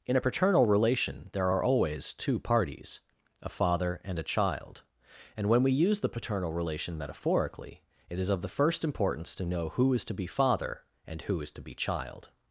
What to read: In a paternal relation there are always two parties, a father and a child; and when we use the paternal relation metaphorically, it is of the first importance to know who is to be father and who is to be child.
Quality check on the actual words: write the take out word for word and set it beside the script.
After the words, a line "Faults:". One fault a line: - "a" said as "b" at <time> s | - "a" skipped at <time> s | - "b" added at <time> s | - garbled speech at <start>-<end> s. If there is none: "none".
In a paternal relation there are always two parties, a father and a child; and when we use the paternal relation metaphorically, it is of the first importance to know who is to be father and who is to be child.
Faults:
none